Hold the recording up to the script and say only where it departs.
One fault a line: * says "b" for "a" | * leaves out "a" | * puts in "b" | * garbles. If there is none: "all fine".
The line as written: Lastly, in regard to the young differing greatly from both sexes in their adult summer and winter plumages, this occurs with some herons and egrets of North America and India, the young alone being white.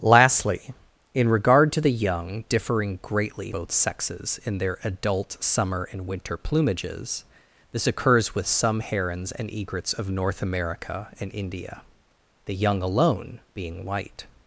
* leaves out "from"